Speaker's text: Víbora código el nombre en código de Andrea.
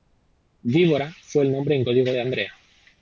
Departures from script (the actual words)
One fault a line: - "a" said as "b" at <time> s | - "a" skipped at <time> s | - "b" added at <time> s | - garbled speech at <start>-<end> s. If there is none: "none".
- "código" said as "fue" at 1.2 s